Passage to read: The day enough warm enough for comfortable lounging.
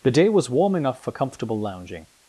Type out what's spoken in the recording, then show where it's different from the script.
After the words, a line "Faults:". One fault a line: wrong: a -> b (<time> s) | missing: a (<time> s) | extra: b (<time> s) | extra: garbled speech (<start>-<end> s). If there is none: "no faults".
The day was warm enough for comfortable lounging.
Faults:
wrong: enough -> was (0.3 s)